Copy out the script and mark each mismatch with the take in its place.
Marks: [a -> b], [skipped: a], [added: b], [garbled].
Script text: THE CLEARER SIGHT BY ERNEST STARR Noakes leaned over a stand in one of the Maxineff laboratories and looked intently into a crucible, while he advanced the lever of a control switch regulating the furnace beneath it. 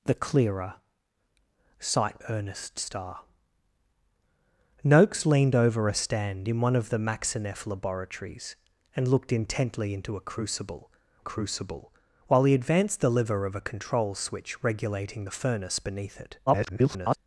THE CLEARER SIGHT [skipped: BY] ERNEST STARR Noakes leaned over a stand in one of the Maxineff laboratories and looked intently into a crucible, [added: crucible] while he advanced the lever of a control switch regulating the furnace beneath it. [garbled]